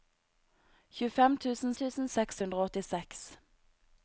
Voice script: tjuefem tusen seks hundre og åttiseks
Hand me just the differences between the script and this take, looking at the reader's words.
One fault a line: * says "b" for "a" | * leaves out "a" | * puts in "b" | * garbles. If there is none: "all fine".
* puts in "tusen"